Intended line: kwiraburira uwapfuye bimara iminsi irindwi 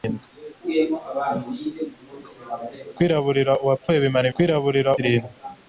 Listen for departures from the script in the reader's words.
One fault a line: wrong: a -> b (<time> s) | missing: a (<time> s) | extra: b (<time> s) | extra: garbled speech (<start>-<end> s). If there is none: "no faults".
wrong: iminsi -> kwiraburira (4.3 s)